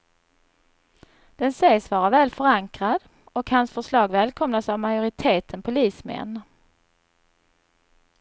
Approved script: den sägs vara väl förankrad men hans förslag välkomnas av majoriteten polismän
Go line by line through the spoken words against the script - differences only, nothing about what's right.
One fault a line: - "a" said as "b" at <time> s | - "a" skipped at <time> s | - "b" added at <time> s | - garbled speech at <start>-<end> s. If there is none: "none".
- "men" said as "och" at 3.2 s